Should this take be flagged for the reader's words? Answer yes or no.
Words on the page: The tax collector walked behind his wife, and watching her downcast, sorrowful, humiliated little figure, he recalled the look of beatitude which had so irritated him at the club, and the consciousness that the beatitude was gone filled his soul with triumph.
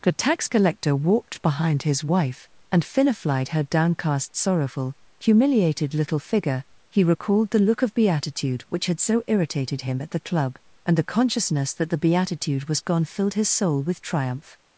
yes